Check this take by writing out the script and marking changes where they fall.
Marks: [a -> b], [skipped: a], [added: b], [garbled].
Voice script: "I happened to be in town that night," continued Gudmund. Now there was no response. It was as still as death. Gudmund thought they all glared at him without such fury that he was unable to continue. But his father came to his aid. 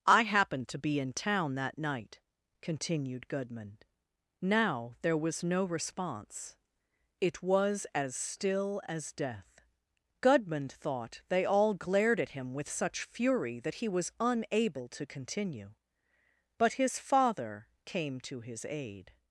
"I happened to be in town that night," continued Gudmund. Now there was no response. It was as still as death. Gudmund thought they all glared at him [without -> with] such fury that he was unable to continue. But his father came to his aid.